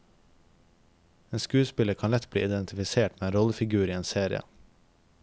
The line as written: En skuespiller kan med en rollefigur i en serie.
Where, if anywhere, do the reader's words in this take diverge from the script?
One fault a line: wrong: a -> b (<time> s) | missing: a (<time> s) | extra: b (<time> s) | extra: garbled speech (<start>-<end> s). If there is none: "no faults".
extra: lett bli identifisert (2.1 s)